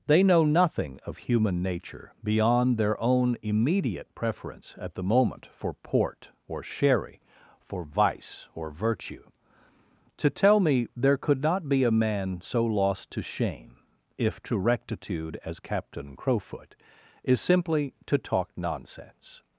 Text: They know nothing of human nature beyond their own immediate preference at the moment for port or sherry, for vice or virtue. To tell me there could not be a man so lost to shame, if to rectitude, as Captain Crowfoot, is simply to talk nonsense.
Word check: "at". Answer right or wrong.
right